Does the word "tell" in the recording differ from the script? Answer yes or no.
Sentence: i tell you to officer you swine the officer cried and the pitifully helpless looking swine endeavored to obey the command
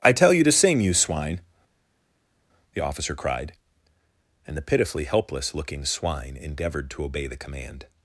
no